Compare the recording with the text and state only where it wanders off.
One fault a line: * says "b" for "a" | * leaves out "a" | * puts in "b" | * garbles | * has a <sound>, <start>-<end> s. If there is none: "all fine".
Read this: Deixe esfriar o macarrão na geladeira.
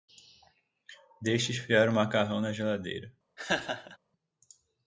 * has a laugh, 3.4-4.0 s